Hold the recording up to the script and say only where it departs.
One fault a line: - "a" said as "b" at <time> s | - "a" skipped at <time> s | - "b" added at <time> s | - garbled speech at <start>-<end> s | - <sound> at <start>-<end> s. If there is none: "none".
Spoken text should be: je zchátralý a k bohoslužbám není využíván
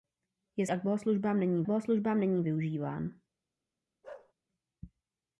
- "zchátralý" skipped at 0.7 s
- "bohoslužbám není" added at 1.7 s
- bark at 4.0-4.3 s